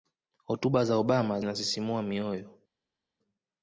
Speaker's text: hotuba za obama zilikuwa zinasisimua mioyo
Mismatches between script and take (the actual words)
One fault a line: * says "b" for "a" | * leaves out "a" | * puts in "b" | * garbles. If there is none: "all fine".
* leaves out "zilikuwa"